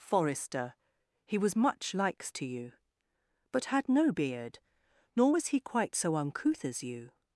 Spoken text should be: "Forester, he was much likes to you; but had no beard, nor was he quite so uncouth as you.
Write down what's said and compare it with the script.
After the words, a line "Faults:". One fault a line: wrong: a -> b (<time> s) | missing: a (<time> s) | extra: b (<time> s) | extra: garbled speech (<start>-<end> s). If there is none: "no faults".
"Forester, he was much likes to you; but had no beard, nor was he quite so uncouth as you.
Faults:
no faults